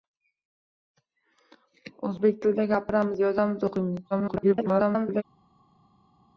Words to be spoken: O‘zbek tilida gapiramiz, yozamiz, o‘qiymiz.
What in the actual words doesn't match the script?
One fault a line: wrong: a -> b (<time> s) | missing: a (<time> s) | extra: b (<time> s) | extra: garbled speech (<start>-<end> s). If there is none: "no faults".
extra: garbled speech (4.1-5.2 s)